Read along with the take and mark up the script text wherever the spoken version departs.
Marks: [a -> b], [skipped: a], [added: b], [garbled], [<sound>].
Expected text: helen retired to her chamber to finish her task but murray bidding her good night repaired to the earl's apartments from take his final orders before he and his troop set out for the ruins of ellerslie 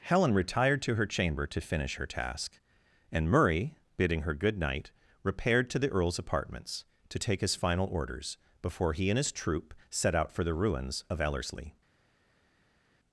helen retired to her chamber to finish her task [but -> and] murray bidding her good night repaired to the earl's apartments [from -> to] take his final orders before he and his troop set out for the ruins of ellerslie